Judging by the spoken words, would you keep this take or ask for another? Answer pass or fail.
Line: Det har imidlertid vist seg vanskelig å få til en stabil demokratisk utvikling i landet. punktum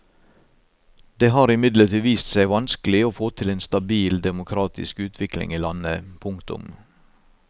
pass